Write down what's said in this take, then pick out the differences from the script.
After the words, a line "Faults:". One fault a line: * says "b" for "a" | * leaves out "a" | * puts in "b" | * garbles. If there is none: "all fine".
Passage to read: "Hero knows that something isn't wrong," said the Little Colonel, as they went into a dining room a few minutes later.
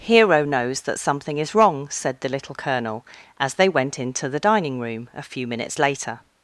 "Hero knows that something is wrong," said the Little Colonel, as they went into the dining room a few minutes later.
Faults:
* says "is" for "isn't"
* says "the" for "a"